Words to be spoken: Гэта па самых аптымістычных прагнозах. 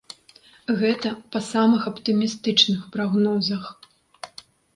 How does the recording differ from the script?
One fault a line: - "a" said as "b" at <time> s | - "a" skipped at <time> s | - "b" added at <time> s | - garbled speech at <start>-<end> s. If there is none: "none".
none